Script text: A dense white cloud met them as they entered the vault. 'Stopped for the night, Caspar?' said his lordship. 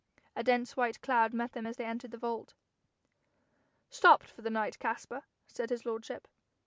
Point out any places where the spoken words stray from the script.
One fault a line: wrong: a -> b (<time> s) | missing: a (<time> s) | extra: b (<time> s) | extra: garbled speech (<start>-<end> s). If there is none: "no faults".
no faults